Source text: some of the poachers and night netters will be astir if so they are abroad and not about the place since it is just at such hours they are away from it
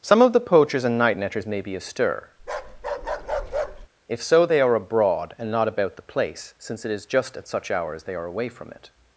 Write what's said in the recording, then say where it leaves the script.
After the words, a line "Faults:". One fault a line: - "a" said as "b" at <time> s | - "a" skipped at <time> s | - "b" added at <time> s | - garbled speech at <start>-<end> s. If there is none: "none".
some of the poachers and night netters may be astir if so they are abroad and not about the place since it is just at such hours they are away from it
Faults:
- "will" said as "may" at 1.4 s